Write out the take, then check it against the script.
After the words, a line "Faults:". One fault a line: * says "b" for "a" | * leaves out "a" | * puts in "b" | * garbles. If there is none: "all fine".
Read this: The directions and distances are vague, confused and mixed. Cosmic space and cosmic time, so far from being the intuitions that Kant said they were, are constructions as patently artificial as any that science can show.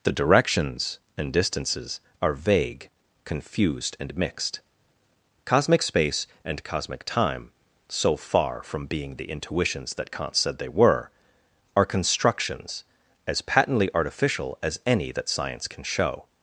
The directions and distances are vague, confused and mixed. Cosmic space and cosmic time, so far from being the intuitions that Kant said they were, are constructions as patently artificial as any that science can show.
Faults:
all fine